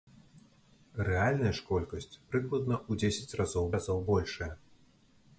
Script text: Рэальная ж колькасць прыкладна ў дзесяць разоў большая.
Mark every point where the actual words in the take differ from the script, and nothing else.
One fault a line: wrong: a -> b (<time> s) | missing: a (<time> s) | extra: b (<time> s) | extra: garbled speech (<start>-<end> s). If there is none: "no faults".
extra: разоў (3.8 s)